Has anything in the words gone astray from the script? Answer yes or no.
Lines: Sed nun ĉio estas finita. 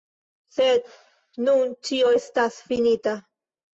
no